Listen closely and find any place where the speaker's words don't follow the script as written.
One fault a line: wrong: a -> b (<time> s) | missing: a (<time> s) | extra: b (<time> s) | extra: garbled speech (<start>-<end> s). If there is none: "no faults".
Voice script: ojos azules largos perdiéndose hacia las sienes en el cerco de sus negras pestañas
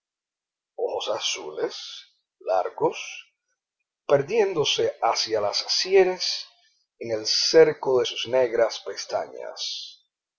no faults